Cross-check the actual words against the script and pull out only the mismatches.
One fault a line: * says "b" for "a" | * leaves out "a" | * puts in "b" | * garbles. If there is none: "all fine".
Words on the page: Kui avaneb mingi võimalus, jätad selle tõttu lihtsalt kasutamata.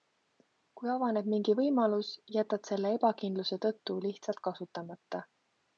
* puts in "ebakindluse"